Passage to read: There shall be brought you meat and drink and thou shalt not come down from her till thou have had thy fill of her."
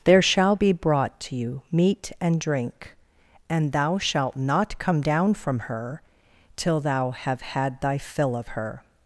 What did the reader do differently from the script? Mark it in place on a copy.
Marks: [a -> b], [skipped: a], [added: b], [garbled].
There shall be brought [added: to] you meat and drink and thou shalt not come down from her till thou have had thy fill of her."